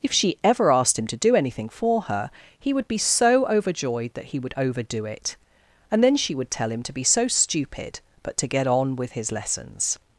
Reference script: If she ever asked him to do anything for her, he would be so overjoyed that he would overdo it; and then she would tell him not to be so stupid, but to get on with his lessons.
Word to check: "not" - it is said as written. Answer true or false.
false